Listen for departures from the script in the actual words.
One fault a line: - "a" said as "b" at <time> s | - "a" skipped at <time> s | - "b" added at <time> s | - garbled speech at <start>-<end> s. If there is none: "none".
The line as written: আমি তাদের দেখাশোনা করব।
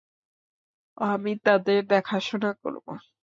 none